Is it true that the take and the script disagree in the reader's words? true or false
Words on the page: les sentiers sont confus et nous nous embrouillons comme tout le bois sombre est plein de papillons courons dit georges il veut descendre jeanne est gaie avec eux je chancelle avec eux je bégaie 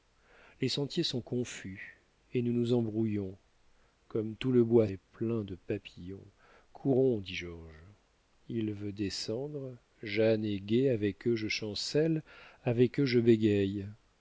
true